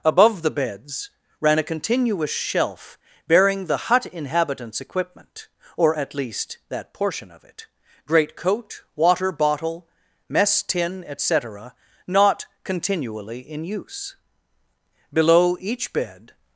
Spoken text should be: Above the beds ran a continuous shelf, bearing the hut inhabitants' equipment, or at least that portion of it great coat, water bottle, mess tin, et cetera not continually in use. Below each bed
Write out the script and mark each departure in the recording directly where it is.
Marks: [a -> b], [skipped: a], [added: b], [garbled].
Above the beds ran a continuous shelf, bearing the hut inhabitants' equipment, or at least that portion of it great coat, water bottle, mess tin, et cetera not continually in use. Below each bed